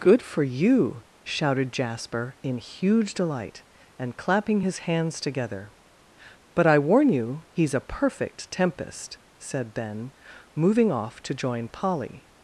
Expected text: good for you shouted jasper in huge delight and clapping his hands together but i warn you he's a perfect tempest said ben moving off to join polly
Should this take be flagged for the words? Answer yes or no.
no